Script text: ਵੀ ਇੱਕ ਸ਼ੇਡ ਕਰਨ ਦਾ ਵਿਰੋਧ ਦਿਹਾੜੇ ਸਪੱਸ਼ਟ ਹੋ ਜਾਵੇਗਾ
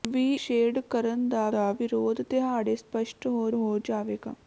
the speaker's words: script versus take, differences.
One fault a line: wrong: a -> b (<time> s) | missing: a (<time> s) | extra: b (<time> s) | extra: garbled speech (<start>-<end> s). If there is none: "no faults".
missing: ਇੱਕ (0.3 s)
extra: ਦਾ (1.5 s)
extra: ਹੋ (3.5 s)